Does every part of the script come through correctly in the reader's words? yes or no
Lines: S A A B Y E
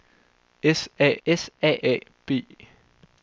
no